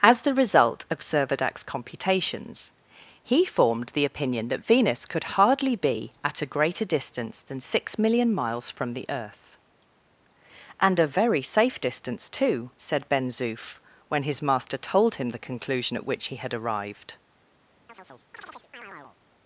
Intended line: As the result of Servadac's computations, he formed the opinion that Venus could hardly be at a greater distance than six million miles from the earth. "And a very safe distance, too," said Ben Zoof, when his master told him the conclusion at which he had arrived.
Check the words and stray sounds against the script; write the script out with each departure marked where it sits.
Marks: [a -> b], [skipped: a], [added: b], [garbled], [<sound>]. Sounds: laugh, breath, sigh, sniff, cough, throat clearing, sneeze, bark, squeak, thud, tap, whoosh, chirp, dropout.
As the result of Servadac's computations, he formed the opinion that Venus could hardly be at a greater distance than six million miles from the earth. "And a very safe distance, too," said Ben Zoof, when his master told him the conclusion at which he had arrived. [chirp]